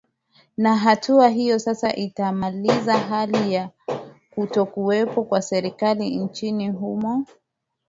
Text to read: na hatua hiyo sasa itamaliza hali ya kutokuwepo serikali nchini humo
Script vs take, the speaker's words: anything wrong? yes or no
yes